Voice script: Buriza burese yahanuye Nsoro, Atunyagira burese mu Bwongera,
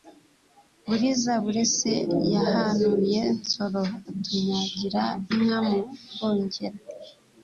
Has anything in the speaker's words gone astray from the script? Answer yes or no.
yes